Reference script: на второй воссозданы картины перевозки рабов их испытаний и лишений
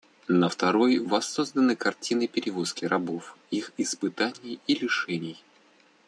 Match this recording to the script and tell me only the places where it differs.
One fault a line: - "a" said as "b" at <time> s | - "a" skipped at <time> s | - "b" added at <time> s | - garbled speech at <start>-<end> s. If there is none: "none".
none